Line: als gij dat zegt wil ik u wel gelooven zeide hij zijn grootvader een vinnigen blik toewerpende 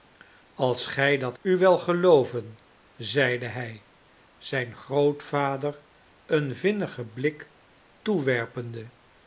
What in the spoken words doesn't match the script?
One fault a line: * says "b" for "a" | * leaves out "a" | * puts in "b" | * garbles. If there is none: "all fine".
* leaves out "zegt wil ik"